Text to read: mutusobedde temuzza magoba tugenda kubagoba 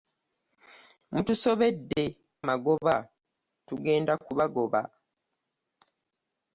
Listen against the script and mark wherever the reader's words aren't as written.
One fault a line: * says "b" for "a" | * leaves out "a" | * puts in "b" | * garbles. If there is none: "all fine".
* leaves out "temuzza"